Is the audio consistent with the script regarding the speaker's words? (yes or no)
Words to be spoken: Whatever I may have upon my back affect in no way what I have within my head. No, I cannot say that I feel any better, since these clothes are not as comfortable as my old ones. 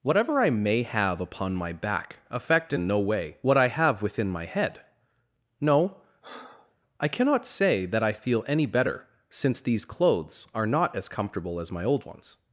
yes